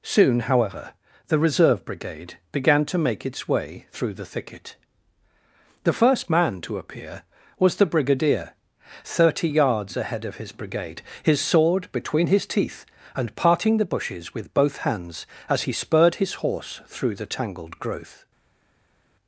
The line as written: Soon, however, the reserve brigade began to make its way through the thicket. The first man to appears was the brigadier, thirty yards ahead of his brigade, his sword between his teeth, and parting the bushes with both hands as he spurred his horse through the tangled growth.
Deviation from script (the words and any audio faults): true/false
true